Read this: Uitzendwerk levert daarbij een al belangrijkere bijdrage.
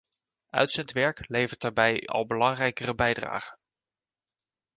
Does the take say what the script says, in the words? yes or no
no